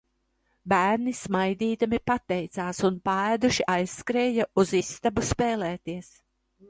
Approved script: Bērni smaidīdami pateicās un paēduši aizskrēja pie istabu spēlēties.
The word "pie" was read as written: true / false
false